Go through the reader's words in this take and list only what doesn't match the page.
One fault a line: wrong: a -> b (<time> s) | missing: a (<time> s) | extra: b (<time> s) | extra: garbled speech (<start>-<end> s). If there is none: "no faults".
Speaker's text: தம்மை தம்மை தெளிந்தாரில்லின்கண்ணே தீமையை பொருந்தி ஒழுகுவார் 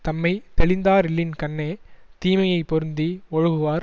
missing: தம்மை (0.3 s)